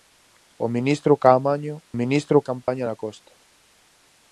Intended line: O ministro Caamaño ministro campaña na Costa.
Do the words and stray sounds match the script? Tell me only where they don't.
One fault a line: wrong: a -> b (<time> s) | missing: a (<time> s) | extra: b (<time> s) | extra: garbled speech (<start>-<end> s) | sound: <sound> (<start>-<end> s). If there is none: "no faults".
sound: dropout (2.6-2.7 s)